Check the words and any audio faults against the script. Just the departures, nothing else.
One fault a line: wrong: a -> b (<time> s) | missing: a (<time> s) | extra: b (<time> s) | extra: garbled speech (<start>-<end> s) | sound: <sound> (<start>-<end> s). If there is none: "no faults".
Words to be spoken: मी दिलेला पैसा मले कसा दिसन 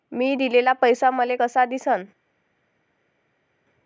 no faults